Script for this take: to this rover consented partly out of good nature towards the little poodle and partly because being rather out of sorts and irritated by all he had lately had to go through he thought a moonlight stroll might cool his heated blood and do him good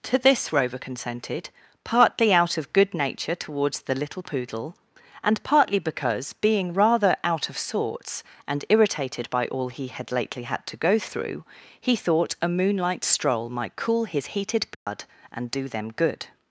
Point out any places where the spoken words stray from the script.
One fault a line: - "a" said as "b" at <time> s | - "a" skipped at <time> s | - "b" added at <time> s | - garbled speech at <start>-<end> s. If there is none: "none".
- "him" said as "them" at 15.7 s